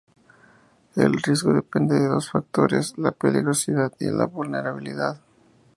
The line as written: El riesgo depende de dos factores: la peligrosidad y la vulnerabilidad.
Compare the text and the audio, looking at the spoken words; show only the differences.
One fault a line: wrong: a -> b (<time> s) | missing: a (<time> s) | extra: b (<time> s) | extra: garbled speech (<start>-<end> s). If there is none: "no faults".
no faults